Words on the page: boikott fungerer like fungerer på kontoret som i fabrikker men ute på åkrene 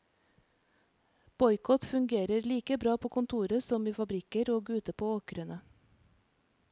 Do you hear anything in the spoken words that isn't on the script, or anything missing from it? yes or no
yes